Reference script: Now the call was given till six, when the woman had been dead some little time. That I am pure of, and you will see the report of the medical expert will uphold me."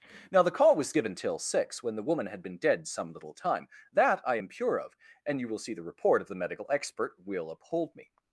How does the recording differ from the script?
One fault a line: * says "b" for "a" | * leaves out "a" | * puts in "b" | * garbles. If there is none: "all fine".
all fine